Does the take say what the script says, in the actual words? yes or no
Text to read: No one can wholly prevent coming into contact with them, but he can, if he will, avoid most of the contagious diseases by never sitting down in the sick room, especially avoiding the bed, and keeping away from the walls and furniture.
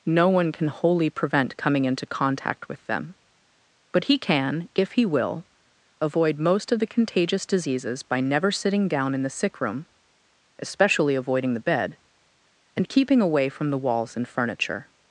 yes